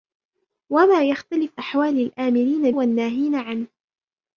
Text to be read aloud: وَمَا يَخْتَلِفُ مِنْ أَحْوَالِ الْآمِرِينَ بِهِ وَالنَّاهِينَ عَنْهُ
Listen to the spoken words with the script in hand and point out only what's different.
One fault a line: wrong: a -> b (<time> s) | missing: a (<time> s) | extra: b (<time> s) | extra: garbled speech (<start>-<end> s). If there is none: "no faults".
missing: مِنْ (1.6 s)
missing: بِهِ (2.7 s)